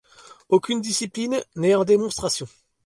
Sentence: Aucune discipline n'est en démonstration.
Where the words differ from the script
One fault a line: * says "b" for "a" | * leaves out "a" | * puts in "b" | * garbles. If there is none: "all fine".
all fine